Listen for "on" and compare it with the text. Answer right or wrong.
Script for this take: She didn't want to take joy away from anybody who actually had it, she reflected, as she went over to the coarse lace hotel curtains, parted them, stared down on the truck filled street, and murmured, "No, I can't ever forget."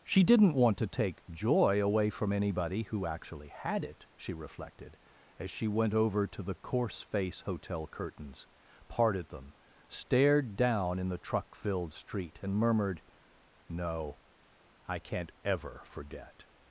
wrong